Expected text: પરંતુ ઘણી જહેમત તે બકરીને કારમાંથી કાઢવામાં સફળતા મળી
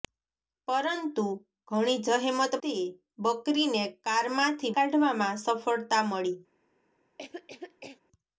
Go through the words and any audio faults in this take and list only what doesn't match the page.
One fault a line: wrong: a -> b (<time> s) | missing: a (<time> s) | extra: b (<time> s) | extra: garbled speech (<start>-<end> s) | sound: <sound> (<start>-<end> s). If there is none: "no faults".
sound: cough (7.2-8.0 s)